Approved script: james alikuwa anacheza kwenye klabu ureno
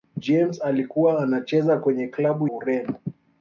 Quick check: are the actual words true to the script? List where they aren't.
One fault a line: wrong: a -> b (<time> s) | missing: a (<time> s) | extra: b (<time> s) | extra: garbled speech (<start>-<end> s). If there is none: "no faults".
no faults